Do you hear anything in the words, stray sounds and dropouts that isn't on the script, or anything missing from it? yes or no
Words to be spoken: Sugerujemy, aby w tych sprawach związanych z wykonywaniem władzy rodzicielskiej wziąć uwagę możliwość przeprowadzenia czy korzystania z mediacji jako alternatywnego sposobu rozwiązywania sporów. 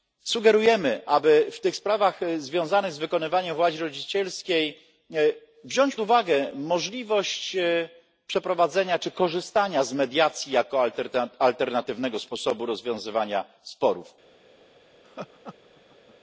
yes